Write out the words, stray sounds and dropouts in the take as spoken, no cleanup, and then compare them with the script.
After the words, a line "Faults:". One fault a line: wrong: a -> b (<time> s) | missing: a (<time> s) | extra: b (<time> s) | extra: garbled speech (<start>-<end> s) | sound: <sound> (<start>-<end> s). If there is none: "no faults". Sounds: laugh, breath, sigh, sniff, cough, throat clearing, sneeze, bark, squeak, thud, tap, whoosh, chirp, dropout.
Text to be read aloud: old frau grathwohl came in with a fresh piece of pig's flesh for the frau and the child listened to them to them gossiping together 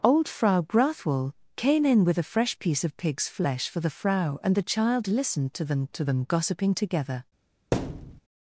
old frau grathwohl came in with a fresh piece of pig's flesh for the frau and the child listened to them to them gossiping together
Faults:
sound: thud (7.7-8.2 s)